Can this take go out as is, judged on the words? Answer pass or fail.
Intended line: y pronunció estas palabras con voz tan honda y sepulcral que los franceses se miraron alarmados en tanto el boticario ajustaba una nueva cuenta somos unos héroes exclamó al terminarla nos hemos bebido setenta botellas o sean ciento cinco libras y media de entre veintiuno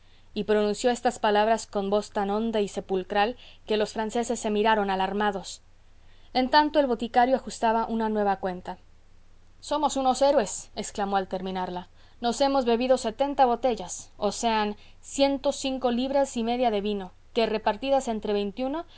fail